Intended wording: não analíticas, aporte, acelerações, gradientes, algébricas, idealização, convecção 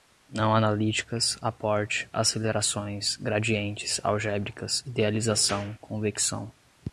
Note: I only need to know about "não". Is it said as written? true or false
true